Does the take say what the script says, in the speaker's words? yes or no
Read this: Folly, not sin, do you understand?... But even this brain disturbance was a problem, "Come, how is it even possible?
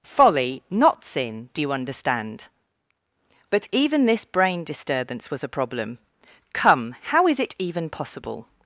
yes